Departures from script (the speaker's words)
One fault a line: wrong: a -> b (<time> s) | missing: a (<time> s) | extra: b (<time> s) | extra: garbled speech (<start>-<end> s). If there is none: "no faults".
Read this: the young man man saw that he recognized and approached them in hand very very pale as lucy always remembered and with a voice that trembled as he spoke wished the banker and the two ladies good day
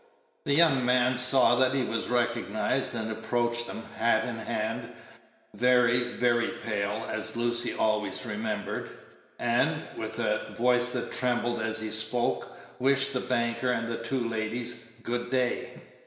missing: man (1.1 s)
extra: was (1.8 s)
extra: hat (4.0 s)